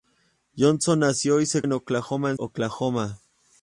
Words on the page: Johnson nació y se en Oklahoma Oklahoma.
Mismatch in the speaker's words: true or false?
false